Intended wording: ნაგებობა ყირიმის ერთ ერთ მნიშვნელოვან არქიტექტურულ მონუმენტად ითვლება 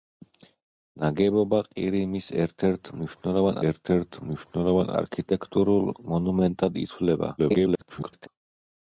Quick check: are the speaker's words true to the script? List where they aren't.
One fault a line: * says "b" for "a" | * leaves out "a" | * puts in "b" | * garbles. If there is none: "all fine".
* puts in "ერთ ერთ მნიშვნელოვან"
* garbles